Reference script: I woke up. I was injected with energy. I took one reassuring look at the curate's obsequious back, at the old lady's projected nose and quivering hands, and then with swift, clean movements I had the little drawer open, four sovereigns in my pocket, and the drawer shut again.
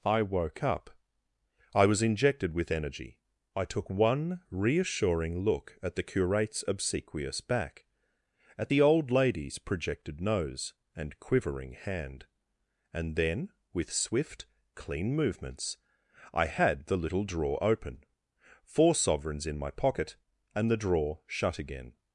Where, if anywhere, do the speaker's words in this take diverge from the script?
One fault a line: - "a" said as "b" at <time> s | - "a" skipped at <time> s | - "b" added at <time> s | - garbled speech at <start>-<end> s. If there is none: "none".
- "hands" said as "hand" at 11.7 s